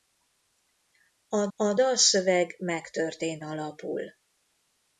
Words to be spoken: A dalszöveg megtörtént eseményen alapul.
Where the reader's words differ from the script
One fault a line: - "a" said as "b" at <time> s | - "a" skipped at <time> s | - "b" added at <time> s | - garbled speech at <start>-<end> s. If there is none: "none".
- "a" added at 1.5 s
- "eseményen" skipped at 3.4 s